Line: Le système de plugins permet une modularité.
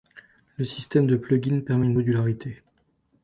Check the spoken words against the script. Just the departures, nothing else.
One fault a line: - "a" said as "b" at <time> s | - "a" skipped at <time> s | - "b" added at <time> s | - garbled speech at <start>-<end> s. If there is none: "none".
none